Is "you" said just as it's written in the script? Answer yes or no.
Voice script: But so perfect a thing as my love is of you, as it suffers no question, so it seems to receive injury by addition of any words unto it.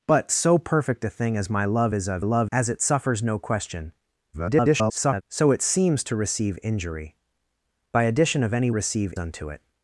no